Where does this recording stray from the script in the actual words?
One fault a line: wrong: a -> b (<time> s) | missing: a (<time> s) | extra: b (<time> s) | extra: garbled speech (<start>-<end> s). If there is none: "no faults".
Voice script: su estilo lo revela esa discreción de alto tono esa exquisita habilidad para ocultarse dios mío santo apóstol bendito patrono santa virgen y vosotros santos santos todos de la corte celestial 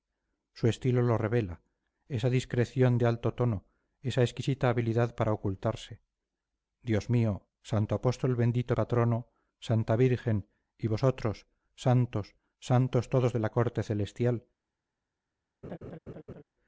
no faults